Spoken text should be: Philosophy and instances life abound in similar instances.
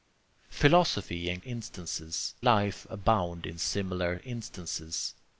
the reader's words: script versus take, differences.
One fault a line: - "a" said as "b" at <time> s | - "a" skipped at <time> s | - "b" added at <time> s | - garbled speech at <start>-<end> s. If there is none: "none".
none